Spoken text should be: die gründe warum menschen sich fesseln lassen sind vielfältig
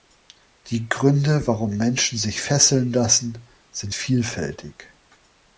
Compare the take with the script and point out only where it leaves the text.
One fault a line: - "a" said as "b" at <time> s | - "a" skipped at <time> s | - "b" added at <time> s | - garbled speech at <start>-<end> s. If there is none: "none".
none